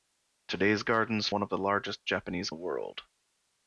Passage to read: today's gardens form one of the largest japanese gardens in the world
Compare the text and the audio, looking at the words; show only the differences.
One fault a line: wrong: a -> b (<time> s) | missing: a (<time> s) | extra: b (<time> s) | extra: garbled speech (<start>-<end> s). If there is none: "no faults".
missing: form (1.3 s)
missing: gardens in (2.5 s)